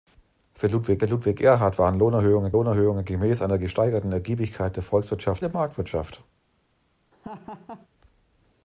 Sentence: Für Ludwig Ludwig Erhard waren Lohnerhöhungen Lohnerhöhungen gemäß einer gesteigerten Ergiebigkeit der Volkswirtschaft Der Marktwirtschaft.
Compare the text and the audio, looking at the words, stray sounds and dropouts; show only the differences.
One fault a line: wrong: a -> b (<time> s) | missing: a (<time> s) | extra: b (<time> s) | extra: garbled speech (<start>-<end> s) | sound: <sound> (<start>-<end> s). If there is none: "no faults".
sound: laugh (7.1-7.9 s)